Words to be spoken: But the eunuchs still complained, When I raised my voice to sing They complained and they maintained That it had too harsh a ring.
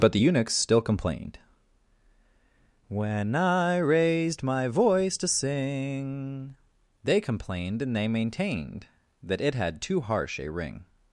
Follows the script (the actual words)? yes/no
yes